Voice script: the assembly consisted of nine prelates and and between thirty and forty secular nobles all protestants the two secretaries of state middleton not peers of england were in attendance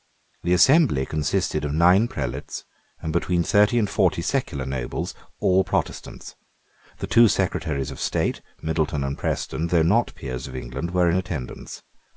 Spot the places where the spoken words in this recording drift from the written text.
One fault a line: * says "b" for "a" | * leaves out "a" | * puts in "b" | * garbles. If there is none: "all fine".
* leaves out "and"
* puts in "and preston though"